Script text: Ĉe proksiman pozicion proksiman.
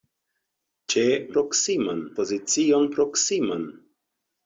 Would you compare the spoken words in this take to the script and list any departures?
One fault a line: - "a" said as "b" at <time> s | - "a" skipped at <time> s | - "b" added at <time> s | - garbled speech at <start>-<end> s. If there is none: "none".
none